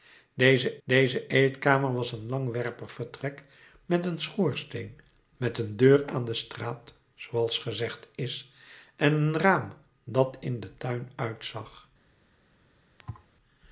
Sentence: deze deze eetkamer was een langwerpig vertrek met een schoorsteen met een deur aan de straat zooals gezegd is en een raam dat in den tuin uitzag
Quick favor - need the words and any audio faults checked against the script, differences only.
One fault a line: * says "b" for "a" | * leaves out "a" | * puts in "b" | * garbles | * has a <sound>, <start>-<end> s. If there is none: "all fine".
* has a thud, 13.0-13.3 s